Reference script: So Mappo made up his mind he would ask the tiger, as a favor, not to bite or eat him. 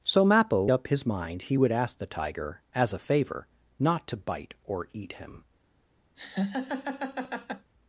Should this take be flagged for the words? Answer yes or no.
yes